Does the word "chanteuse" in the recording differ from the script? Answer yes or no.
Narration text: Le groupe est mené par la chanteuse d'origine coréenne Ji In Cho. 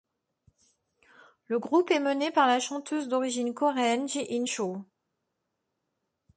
no